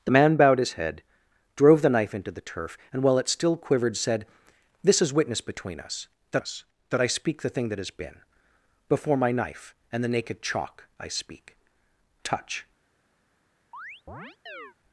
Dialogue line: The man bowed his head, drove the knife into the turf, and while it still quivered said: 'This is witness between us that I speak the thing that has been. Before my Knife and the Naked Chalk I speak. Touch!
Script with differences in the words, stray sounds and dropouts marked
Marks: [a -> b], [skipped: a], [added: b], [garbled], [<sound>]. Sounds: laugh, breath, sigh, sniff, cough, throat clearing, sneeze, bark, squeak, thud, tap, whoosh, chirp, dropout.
The man bowed his head, drove the knife into the turf, and while it still quivered said: 'This is witness between us that [added: us that] I speak the thing that has been. Before my Knife and the Naked Chalk I speak. Touch! [chirp]